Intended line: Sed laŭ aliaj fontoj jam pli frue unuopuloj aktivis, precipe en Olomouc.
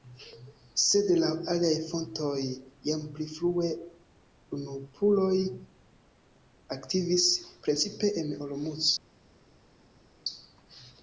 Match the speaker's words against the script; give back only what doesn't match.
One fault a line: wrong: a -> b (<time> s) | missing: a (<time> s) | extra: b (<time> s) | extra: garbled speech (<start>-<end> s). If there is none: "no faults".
no faults